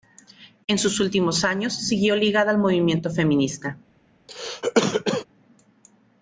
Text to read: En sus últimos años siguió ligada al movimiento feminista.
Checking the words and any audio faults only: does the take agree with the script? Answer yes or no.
no